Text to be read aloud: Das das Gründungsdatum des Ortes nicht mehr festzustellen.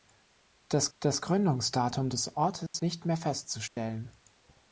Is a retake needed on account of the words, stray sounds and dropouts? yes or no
yes